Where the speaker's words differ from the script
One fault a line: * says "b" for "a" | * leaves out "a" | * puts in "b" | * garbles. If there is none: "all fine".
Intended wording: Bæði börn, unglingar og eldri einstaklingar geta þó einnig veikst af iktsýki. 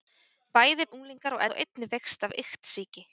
* leaves out "börn"
* leaves out "eldri einstaklingar geta"